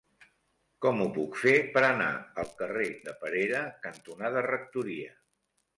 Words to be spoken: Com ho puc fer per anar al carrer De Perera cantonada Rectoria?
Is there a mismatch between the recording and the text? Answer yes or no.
no